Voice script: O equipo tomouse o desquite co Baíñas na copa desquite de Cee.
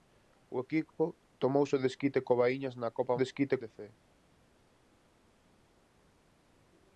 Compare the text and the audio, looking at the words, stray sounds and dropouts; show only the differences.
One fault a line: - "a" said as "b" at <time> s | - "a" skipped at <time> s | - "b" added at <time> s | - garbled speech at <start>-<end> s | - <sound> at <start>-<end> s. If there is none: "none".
none